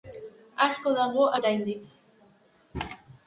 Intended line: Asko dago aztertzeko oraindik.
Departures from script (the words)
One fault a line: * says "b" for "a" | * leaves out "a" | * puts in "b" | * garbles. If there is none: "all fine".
* leaves out "aztertzeko"